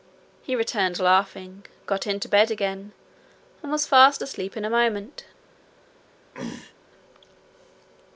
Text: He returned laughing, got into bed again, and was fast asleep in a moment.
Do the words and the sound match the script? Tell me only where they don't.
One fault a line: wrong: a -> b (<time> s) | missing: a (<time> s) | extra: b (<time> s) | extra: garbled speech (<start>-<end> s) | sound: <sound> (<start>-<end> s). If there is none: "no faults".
sound: throat clearing (6.3-6.7 s)